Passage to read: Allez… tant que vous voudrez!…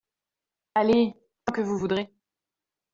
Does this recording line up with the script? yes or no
yes